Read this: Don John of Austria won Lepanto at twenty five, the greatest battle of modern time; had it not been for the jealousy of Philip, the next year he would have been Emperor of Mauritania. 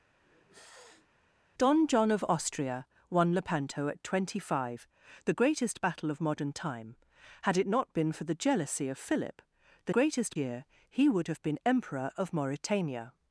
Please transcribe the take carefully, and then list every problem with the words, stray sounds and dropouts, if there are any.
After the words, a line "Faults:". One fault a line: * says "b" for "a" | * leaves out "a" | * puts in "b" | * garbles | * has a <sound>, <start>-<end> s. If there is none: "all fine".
Don John of Austria won Lepanto at twenty five, the greatest battle of modern time; had it not been for the jealousy of Philip, the greatest year he would have been Emperor of Mauritania.
Faults:
* has a sniff, 0.2-1.1 s
* says "greatest" for "next"